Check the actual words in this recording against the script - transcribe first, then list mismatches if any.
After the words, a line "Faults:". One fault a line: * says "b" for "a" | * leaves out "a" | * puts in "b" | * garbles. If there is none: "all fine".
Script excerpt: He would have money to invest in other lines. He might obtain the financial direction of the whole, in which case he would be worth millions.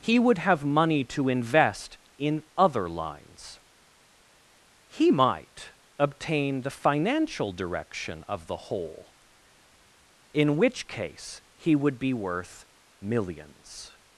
He would have money to invest in other lines. He might obtain the financial direction of the whole, in which case he would be worth millions.
Faults:
all fine